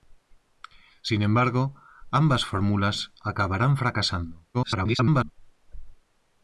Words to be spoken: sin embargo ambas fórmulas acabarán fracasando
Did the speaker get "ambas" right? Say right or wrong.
right